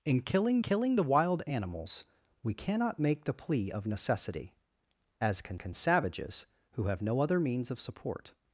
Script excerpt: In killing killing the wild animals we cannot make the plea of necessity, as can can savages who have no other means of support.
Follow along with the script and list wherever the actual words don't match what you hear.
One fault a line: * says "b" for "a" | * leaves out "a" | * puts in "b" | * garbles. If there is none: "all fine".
all fine